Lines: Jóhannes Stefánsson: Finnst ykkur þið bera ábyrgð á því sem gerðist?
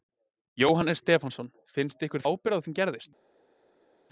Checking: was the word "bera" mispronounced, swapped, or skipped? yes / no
yes